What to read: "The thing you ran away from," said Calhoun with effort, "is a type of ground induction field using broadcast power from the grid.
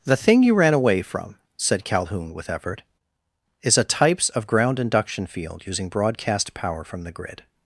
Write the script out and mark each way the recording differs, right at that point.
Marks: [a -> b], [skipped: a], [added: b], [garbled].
"The thing you ran away from," said Calhoun with effort, "is a [type -> types] of ground induction field using broadcast power from the grid.